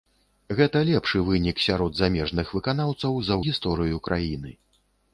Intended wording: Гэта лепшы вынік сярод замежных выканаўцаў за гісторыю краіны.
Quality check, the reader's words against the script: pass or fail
pass